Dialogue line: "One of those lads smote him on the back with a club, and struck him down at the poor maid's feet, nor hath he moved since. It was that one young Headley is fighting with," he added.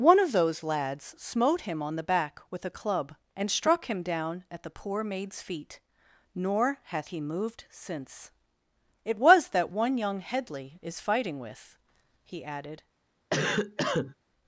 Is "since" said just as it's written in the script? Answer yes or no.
yes